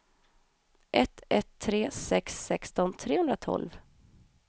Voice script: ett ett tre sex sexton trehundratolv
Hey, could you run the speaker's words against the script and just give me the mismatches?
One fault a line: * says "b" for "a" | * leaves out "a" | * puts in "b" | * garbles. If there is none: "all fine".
all fine